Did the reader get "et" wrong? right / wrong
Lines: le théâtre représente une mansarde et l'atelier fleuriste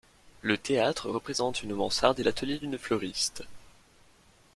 right